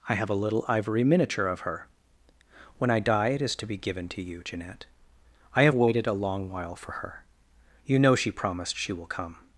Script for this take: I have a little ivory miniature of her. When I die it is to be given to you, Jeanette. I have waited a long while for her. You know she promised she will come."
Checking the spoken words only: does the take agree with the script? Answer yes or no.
yes